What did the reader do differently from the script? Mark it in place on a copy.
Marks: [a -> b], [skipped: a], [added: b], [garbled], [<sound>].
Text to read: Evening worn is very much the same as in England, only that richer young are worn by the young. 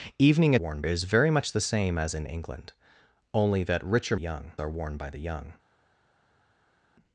Evening worn is very much the same as in England, only that richer young are worn by the young.